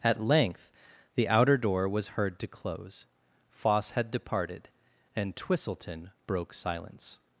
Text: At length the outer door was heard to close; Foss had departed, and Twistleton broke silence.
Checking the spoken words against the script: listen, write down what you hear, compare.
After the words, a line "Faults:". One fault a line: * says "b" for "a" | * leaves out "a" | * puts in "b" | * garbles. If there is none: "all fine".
At length the outer door was heard to close; Foss had departed, and Twistleton broke silence.
Faults:
all fine